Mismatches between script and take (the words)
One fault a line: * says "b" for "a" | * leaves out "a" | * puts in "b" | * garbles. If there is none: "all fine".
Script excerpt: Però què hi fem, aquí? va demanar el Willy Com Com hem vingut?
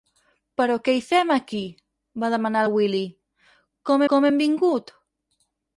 all fine